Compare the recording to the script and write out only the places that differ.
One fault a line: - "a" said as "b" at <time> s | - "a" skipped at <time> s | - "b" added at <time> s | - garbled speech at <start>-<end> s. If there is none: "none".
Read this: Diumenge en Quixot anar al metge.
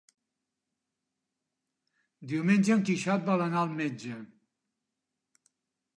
- "vol" added at 3.3 s